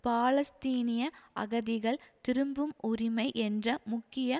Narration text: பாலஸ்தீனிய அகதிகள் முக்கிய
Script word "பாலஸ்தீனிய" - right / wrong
right